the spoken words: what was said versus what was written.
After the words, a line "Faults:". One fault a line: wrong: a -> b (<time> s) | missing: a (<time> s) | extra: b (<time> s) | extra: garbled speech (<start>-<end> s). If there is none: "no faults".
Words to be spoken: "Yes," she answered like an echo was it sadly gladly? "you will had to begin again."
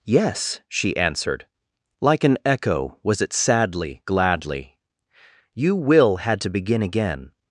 "Yes," she answered like an echo was it sadly gladly? "you will had to begin again."
Faults:
no faults